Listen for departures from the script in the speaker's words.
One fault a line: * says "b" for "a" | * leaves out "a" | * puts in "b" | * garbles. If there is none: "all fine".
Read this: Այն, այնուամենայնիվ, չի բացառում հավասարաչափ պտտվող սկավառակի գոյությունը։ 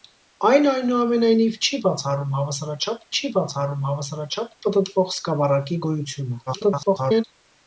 * puts in "չի բացառում հավասարաչափ"
* garbles